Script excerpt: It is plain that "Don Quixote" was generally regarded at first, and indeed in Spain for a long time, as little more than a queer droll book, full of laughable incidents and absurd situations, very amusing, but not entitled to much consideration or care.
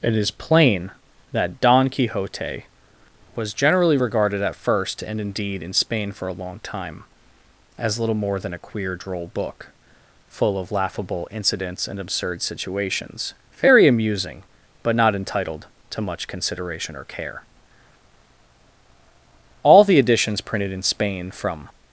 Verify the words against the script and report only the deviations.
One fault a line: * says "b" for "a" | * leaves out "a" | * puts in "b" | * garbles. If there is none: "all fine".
* puts in "All the editions printed in Spain from"